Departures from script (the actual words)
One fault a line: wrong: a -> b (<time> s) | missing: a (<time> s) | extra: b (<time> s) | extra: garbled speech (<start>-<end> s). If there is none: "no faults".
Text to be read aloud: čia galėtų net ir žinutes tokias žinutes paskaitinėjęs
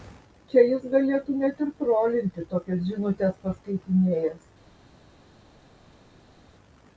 extra: jis (0.7 s)
wrong: žinutes -> trolinti (1.8 s)